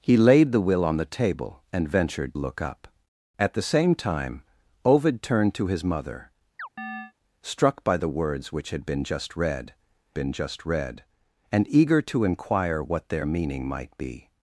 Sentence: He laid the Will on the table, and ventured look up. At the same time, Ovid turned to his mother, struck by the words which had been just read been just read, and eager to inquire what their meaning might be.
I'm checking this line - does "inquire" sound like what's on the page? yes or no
yes